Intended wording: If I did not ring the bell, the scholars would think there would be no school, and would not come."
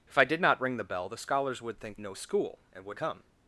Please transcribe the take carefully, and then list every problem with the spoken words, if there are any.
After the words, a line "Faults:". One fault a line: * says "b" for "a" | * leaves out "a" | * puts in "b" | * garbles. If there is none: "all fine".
If I did not ring the bell, the scholars would think no school, and would come."
Faults:
* leaves out "there would be"
* leaves out "not"